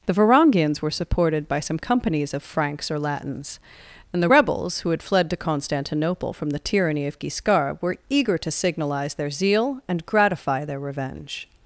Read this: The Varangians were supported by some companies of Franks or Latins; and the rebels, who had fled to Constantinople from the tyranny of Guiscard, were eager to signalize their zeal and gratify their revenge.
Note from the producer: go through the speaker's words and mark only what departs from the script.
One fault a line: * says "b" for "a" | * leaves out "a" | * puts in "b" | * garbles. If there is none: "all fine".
all fine